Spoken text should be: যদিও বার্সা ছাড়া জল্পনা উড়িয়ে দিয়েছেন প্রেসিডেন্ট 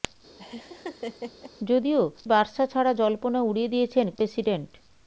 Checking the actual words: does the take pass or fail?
pass